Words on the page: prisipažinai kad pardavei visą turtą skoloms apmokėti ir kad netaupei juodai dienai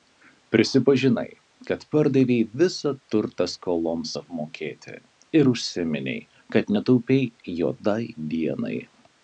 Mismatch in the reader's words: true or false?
true